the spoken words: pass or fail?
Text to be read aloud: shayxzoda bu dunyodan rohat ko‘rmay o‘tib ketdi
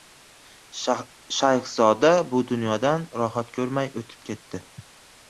pass